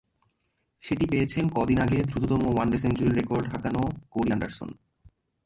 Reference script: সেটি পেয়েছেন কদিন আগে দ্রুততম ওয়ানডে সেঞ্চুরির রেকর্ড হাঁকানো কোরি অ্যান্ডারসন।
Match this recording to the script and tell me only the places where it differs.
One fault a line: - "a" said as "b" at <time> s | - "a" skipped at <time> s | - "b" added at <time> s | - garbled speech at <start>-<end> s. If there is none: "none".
none